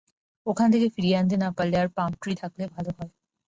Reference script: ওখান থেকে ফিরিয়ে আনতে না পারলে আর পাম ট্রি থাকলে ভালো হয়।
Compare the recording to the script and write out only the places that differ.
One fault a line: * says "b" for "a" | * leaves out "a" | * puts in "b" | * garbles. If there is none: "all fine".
all fine